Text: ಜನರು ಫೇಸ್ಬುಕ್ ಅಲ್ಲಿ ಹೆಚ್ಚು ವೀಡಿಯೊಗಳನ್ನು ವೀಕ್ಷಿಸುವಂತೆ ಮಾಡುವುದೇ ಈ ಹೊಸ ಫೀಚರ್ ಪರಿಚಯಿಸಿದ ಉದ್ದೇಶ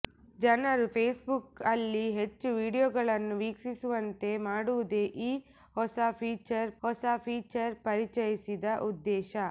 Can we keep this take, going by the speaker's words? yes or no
no